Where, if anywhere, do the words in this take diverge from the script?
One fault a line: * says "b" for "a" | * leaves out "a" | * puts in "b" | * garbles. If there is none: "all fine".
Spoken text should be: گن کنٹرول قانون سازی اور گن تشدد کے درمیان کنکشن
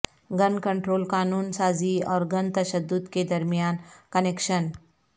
all fine